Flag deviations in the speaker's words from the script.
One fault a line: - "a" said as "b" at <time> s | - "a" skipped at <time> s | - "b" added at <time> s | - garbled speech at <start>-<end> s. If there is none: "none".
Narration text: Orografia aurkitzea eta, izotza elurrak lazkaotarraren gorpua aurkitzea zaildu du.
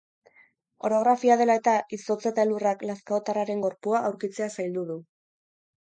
- "aurkitzea" said as "dela" at 1.4 s
- "eta" added at 2.3 s